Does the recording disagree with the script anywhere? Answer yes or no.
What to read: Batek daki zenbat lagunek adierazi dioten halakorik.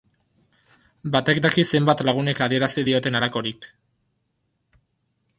no